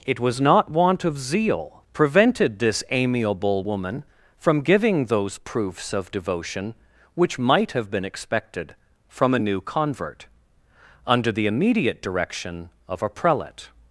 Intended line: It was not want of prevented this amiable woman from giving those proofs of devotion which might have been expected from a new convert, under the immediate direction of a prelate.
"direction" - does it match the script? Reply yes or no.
yes